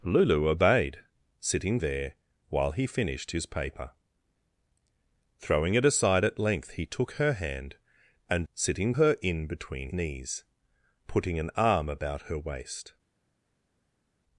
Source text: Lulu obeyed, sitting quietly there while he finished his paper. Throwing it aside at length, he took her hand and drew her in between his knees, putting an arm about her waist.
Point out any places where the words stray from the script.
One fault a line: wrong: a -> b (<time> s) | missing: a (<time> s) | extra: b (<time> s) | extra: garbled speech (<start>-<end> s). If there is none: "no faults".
missing: quietly (1.8 s)
wrong: drew -> sitting (8.5 s)
missing: his (9.9 s)